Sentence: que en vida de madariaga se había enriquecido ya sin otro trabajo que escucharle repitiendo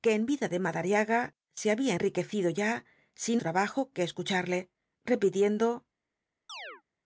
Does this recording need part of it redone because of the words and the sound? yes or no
yes